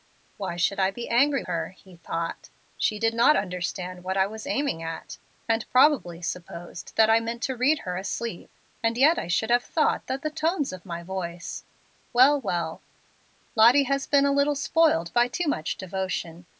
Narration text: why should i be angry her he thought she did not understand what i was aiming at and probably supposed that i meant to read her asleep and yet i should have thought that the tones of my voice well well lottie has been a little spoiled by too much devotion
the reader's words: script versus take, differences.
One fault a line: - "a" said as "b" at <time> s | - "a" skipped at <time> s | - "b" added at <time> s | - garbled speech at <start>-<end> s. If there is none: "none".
none